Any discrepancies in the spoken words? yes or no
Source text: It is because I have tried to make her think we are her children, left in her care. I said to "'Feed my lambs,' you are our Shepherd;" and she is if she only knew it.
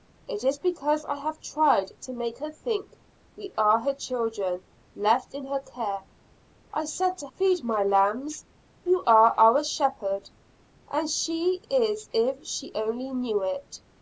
no